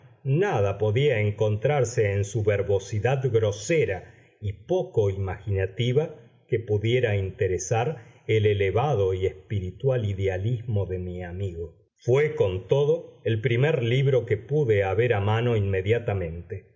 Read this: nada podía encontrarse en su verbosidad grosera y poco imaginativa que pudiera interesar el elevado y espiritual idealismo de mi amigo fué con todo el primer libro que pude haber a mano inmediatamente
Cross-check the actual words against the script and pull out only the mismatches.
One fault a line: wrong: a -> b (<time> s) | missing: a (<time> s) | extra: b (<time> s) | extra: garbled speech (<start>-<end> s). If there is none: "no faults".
no faults